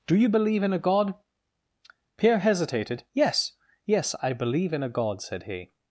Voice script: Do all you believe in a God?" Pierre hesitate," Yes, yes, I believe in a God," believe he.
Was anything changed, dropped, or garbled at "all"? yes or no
yes